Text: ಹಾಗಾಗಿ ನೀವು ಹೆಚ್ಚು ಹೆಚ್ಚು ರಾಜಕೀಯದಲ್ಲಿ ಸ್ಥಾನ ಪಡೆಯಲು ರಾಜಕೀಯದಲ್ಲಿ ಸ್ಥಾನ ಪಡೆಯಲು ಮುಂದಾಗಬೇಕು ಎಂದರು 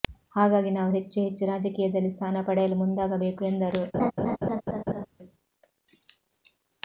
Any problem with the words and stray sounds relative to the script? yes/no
yes